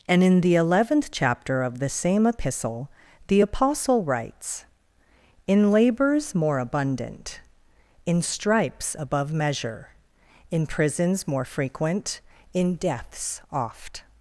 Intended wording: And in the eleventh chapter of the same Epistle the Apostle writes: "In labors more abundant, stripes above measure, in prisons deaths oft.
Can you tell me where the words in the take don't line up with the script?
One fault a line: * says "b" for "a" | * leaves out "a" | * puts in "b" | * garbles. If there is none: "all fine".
* puts in "in"
* puts in "more frequent in"